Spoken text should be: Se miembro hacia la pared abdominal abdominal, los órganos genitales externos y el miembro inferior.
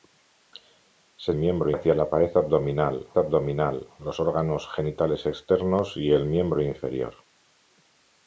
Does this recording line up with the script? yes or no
yes